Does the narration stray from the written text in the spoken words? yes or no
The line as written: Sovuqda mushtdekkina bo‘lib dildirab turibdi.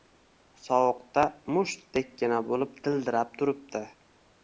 no